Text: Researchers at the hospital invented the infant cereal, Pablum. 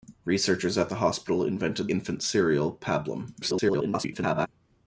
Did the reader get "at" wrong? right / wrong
right